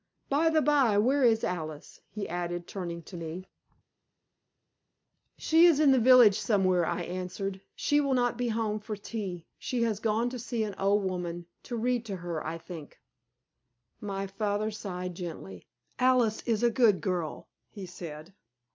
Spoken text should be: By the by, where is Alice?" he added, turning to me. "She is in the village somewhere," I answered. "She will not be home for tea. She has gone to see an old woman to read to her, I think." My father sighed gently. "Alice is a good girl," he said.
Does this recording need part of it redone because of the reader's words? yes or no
no